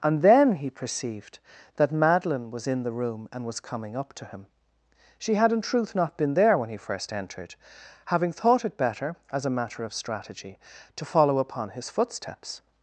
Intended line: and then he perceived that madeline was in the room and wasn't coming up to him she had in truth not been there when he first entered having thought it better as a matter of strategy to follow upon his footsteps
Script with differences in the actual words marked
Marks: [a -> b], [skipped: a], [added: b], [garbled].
and then he perceived that madeline was in the room and [wasn't -> was] coming up to him she had in truth not been there when he first entered having thought it better as a matter of strategy to follow upon his footsteps